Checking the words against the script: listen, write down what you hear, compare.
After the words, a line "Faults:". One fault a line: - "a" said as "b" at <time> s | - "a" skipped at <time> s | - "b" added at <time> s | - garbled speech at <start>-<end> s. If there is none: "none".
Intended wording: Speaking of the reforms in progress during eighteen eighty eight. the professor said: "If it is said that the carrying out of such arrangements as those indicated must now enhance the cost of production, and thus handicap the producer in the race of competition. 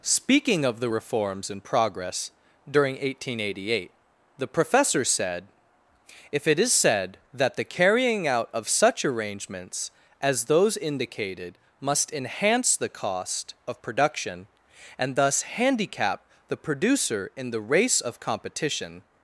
Speaking of the reforms in progress during eighteen eighty eight. the professor said: "If it is said that the carrying out of such arrangements as those indicated must enhance the cost of production, and thus handicap the producer in the race of competition.
Faults:
- "now" skipped at 12.1 s